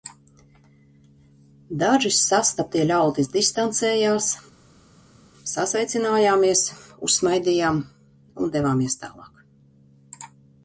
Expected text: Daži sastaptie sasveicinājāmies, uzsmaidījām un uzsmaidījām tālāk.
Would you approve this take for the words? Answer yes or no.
no